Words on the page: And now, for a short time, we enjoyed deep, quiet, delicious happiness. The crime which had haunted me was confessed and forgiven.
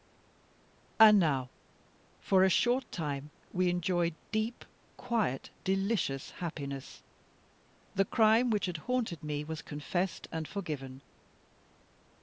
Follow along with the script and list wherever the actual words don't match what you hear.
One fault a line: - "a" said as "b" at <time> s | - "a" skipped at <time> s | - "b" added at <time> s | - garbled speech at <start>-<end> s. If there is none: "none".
none